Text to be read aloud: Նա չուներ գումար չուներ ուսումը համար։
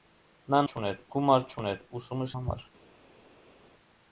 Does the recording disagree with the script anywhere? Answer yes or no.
no